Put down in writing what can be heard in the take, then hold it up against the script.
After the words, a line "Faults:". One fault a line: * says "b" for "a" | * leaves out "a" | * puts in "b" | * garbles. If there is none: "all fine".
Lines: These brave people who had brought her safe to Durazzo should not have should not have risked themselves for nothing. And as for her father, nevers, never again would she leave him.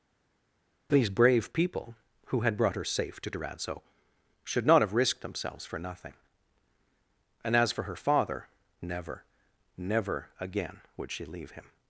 These brave people who had brought her safe to Durazzo should not have risked themselves for nothing. And as for her father, never, never again would she leave him.
Faults:
* leaves out "should not have"
* says "never" for "nevers"